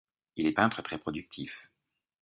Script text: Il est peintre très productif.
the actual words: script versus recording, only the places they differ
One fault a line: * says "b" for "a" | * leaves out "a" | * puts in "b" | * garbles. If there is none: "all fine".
all fine